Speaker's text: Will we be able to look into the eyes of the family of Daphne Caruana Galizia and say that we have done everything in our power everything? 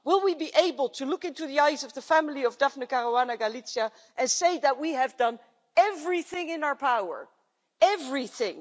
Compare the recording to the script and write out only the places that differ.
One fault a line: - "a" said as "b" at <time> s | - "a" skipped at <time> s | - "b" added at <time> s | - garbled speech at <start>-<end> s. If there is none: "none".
none